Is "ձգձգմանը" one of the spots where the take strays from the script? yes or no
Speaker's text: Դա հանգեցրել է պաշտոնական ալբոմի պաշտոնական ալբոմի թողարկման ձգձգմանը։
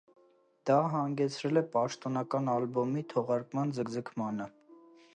no